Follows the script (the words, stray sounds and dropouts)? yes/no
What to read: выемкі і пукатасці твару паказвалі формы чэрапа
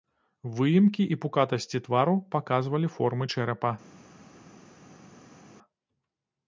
yes